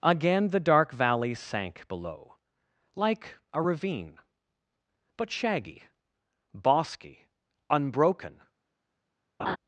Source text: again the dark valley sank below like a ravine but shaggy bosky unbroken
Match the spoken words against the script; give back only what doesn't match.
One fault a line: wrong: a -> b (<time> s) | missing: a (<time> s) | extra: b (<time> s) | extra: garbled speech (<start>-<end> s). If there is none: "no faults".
no faults